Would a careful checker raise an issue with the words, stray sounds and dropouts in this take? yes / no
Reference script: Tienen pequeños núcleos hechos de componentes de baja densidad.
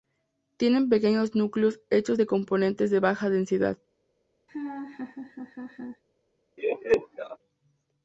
yes